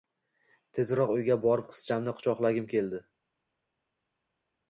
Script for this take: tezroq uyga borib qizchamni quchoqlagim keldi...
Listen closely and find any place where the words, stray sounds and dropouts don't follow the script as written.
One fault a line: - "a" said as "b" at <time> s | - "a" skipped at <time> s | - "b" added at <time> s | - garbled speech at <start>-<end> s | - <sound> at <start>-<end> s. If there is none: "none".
none